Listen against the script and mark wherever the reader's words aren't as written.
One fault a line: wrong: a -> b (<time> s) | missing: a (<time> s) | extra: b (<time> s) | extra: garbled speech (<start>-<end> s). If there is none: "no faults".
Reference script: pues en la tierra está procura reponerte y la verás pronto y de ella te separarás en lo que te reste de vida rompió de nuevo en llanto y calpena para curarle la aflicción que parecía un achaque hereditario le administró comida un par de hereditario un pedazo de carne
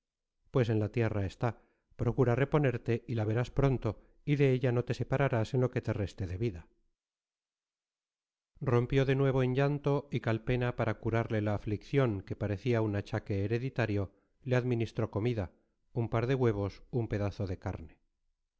extra: no (4.7 s)
wrong: hereditario -> huevos (16.3 s)